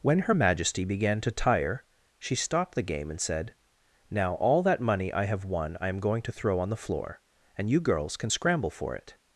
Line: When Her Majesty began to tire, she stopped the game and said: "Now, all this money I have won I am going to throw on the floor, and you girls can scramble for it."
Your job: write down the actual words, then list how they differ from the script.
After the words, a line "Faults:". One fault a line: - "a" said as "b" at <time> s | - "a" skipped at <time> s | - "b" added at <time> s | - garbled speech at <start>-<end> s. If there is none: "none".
When Her Majesty began to tire, she stopped the game and said: "Now, all that money I have won I am going to throw on the floor, and you girls can scramble for it."
Faults:
- "this" said as "that" at 4.6 s